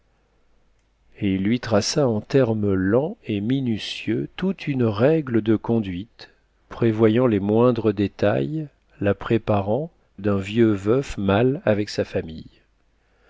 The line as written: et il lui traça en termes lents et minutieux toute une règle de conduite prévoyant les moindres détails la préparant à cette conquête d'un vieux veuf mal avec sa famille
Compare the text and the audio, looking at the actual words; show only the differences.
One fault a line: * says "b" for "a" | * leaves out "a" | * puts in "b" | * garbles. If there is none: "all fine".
* leaves out "à cette conquête"